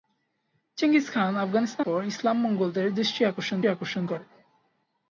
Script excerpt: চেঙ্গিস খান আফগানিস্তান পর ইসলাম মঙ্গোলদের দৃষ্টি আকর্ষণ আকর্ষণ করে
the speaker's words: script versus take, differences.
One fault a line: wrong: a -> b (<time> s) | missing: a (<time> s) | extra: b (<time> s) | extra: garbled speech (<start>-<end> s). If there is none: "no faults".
no faults